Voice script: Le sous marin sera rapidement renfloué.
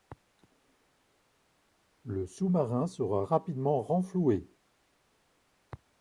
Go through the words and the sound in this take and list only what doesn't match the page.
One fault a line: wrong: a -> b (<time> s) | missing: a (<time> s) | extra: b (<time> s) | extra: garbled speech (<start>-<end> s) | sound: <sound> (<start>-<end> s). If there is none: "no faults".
no faults